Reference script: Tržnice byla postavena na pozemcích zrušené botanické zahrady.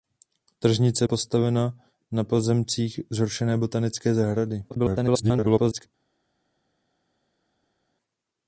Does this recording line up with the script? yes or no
no